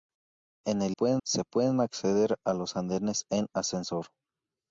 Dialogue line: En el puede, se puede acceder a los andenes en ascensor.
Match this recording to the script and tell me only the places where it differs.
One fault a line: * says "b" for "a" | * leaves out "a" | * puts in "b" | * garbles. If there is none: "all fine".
all fine